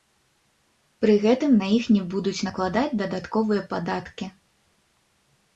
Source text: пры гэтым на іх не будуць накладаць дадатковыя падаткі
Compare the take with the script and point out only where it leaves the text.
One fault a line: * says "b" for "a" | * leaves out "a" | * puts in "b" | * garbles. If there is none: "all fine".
all fine